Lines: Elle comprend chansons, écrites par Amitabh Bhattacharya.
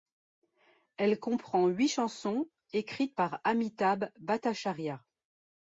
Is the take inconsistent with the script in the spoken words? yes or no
yes